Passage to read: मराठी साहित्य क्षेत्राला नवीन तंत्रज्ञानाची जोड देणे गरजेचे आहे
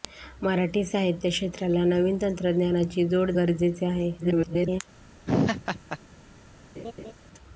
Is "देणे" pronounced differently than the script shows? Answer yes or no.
yes